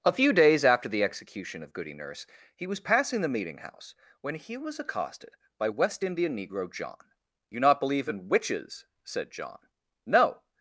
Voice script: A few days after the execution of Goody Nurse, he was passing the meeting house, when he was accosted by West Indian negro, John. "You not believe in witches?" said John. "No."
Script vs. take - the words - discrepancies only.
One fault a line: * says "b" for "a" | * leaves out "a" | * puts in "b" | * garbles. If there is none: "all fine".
all fine